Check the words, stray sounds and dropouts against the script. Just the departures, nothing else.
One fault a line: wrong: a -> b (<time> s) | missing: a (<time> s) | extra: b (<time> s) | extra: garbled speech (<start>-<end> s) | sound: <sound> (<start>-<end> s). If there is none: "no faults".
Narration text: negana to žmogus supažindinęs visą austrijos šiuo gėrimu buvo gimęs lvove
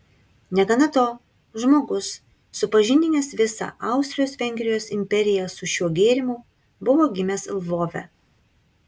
extra: vengrijos imperiją su (4.4 s)